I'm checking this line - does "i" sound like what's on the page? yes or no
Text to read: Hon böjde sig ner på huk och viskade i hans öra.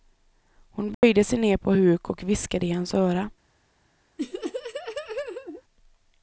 yes